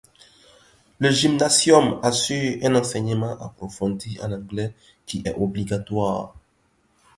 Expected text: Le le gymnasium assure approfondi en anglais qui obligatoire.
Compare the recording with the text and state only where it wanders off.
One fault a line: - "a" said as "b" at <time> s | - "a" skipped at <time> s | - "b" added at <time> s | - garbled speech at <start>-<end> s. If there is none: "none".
- "le" skipped at 1.1 s
- "un enseignement" added at 2.6 s
- "est" added at 5.2 s